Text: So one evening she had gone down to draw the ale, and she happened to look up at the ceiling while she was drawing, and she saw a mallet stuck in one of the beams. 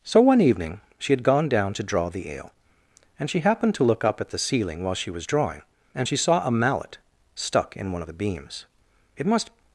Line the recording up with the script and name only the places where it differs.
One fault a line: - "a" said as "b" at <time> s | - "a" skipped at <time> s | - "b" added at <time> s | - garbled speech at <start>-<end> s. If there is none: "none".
- "It must" added at 9.2 s